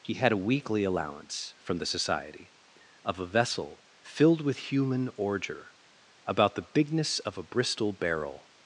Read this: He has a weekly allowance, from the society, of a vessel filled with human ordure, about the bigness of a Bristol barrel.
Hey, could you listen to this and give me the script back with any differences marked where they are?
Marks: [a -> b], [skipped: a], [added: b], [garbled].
He [has -> had] a weekly allowance, from the society, of a vessel filled with human ordure, about the bigness of a Bristol barrel.